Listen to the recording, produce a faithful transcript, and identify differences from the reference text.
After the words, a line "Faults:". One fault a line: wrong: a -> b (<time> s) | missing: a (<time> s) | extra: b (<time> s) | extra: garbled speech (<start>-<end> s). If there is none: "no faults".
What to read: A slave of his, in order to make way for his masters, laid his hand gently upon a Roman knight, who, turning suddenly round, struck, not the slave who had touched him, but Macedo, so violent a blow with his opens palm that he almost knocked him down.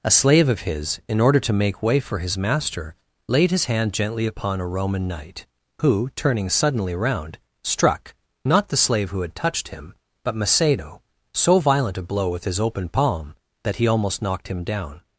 A slave of his, in order to make way for his master, laid his hand gently upon a Roman knight, who, turning suddenly round, struck, not the slave who had touched him, but Macedo, so violent a blow with his open palm that he almost knocked him down.
Faults:
wrong: masters -> master (2.4 s)
wrong: opens -> open (12.6 s)